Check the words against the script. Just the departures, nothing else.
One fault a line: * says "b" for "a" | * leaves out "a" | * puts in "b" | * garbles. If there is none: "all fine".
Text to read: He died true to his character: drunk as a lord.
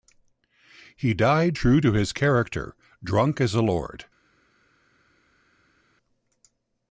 all fine